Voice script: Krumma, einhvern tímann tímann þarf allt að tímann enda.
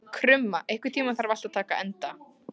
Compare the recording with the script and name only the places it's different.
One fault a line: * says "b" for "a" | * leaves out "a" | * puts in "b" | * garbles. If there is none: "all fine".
* leaves out "tímann"
* says "taka" for "tímann"